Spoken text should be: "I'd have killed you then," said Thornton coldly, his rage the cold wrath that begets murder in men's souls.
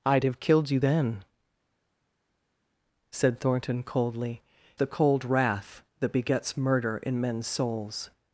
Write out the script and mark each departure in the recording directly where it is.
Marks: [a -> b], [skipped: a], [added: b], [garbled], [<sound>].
"I'd have killed you then," said Thornton coldly, [skipped: his rage] the cold wrath that begets murder in men's souls.